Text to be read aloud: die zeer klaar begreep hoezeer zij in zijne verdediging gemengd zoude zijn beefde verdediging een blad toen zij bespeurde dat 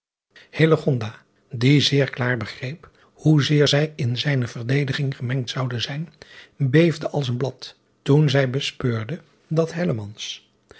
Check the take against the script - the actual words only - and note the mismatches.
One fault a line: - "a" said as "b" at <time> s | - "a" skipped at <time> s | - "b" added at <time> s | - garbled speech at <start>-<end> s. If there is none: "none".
- "verdediging" said as "als" at 7.1 s